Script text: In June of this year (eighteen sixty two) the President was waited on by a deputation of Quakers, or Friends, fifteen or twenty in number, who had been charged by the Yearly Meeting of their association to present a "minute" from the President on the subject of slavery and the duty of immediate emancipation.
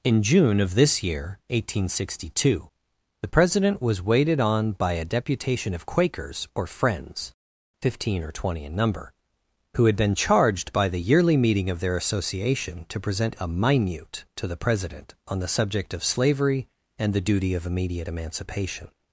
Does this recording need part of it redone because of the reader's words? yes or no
yes